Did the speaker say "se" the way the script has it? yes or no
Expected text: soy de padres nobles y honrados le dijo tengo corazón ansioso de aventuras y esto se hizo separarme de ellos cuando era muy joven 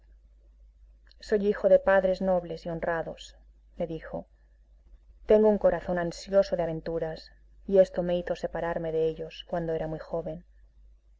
no